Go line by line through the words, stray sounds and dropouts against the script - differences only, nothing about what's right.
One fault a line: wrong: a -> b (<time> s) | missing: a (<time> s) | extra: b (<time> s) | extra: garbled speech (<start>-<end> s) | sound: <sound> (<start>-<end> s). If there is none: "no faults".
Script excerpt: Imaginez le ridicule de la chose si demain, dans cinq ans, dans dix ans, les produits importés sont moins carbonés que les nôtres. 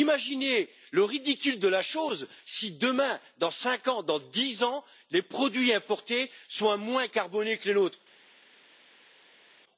no faults